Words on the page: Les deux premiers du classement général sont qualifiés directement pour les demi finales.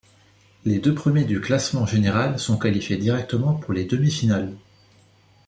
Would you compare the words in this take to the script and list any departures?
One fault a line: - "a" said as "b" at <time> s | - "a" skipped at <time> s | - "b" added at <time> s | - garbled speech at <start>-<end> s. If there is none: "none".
none